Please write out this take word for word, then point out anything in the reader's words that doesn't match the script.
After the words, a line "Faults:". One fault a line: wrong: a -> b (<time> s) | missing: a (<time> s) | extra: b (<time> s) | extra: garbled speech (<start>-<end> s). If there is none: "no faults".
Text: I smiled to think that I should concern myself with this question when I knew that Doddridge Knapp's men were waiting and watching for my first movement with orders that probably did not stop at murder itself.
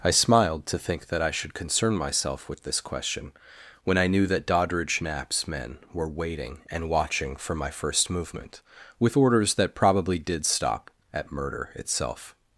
I smiled to think that I should concern myself with this question when I knew that Doddridge Knapp's men were waiting and watching for my first movement with orders that probably did stop at murder itself.
Faults:
missing: not (10.4 s)